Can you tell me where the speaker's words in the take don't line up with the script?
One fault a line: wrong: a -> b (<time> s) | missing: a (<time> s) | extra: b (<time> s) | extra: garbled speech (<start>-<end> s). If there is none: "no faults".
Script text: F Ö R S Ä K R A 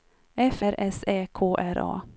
missing: Ö (0.6 s)